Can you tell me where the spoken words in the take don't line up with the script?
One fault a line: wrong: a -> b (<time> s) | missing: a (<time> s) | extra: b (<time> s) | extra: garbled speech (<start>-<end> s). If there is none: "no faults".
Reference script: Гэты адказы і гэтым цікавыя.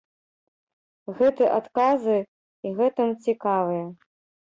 no faults